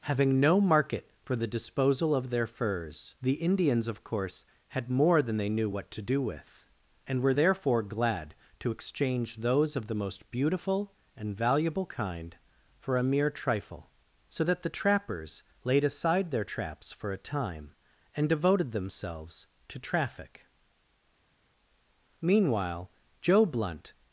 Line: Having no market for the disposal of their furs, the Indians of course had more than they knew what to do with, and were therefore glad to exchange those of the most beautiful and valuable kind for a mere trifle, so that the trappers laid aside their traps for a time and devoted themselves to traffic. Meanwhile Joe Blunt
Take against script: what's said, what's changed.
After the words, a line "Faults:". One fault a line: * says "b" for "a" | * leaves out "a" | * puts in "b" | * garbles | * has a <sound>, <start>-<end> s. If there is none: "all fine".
Having no market for the disposal of their furs, the Indians of course had more than they knew what to do with, and were therefore glad to exchange those of the most beautiful and valuable kind for a mere trifle, so that the trappers laid aside their traps for a time and devoted themselves to traffic. Meanwhile Joe Blunt
Faults:
all fine